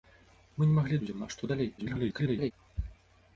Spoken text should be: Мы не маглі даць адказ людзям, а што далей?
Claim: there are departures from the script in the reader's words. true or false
true